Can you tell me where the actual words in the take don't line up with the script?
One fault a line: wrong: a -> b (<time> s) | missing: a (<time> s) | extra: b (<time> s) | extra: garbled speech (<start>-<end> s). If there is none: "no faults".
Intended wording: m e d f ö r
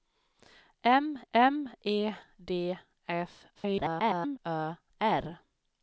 extra: m (1.3 s)
extra: garbled speech (3.5-4.4 s)